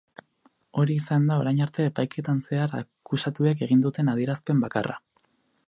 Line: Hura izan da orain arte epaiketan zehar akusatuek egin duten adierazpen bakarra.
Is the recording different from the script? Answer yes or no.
yes